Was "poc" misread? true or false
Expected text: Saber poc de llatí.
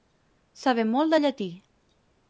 true